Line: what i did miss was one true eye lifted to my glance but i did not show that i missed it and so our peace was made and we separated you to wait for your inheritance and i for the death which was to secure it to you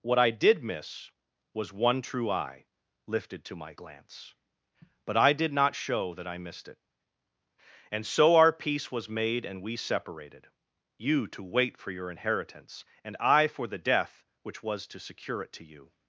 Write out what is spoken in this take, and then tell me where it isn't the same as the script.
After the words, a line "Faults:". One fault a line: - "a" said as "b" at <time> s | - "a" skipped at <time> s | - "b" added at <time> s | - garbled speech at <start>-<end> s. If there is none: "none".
what i did miss was one true eye lifted to my glance but i did not show that i missed it and so our peace was made and we separated you to wait for your inheritance and i for the death which was to secure it to you
Faults:
none